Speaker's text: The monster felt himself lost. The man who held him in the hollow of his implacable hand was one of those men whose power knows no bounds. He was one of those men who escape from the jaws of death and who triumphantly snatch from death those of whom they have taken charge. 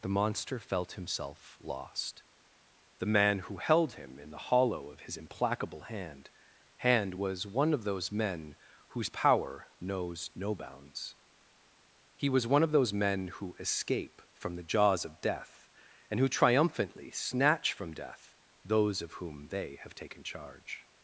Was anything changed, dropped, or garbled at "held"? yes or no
no